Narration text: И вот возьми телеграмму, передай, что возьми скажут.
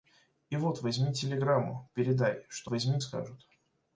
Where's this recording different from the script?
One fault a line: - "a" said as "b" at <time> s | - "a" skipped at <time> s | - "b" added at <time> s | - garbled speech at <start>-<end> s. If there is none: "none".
none